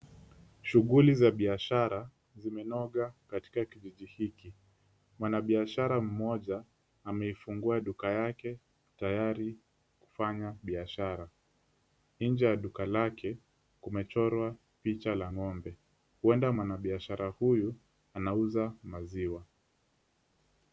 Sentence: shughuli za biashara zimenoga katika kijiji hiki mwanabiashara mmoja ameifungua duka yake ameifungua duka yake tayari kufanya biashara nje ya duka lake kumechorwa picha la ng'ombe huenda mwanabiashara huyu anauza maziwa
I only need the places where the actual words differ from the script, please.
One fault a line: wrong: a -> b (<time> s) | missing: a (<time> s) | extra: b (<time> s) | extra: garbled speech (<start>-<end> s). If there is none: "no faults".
missing: ameifungua duka yake (8.6 s)